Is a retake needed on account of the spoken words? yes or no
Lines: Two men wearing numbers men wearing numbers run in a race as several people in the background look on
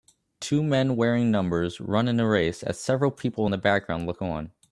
yes